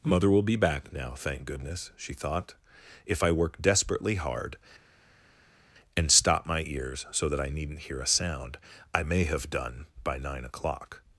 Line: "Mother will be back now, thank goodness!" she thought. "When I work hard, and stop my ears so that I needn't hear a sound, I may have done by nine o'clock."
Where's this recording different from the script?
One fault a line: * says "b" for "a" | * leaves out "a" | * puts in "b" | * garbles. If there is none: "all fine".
* says "If" for "When"
* puts in "desperately"